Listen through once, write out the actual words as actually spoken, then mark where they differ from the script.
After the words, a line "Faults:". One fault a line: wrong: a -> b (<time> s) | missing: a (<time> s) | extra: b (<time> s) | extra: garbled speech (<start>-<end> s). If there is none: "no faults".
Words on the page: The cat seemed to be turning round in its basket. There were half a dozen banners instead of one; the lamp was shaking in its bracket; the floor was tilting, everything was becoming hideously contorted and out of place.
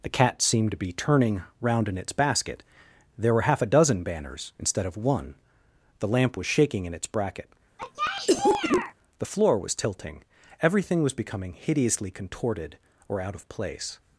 The cat seemed to be turning round in its basket. There were half a dozen banners instead of one; the lamp was shaking in its bracket; the floor was tilting, everything was becoming hideously contorted or out of place.
Faults:
wrong: and -> or (13.1 s)